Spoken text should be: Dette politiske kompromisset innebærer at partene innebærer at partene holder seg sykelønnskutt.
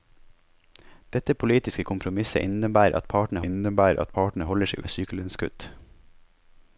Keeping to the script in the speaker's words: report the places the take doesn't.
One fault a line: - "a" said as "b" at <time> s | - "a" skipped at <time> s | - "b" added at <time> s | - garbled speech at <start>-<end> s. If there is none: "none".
none